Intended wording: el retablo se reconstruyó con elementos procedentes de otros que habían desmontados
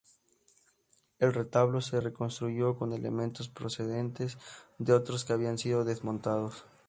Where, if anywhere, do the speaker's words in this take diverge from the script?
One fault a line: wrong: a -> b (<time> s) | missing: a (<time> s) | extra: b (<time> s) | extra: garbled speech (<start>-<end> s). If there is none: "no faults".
extra: sido (5.6 s)